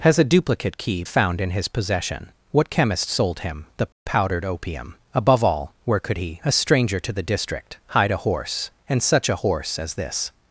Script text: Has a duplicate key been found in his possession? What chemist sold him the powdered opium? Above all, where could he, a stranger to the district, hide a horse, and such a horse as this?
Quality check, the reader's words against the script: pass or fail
fail